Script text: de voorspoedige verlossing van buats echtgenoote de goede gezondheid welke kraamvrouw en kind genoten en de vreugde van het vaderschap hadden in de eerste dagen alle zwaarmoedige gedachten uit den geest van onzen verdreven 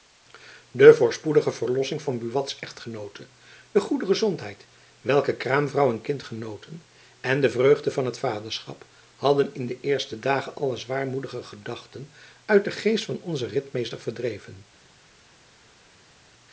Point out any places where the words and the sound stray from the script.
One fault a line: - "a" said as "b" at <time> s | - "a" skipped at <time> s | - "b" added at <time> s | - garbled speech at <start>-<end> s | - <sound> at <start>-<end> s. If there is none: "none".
- "ritmeester" added at 13.5 s